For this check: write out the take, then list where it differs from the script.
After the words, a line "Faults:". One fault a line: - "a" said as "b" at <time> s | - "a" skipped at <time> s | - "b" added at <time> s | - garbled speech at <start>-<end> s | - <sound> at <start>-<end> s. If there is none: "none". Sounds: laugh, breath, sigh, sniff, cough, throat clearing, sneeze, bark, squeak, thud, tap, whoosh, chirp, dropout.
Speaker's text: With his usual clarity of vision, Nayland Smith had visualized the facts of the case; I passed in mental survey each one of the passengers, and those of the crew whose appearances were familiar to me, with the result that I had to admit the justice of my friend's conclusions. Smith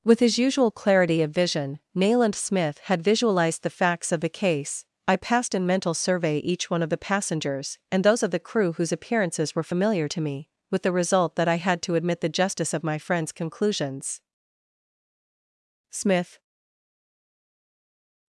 With his usual clarity of vision, Nayland Smith had visualized the facts of the case; I passed in mental survey each one of the passengers, and those of the crew whose appearances were familiar to me, with the result that I had to admit the justice of my friend's conclusions. Smith
Faults:
none